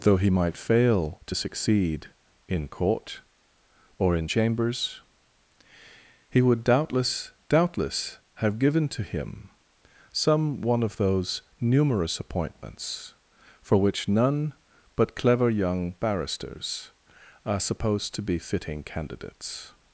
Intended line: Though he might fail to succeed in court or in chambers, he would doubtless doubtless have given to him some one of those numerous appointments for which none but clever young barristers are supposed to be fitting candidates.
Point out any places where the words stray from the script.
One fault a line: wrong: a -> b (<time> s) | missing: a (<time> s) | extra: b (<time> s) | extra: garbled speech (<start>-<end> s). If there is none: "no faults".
no faults